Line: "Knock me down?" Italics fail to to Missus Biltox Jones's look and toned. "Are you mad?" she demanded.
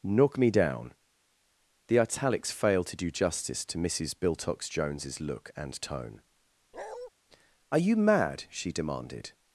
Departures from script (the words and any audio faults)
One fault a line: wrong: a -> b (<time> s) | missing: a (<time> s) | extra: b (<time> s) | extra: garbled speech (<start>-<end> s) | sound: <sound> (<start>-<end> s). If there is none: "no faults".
extra: The (1.9 s)
extra: do justice (3.0 s)
wrong: toned -> tone (5.8 s)
sound: bark (6.7-7.1 s)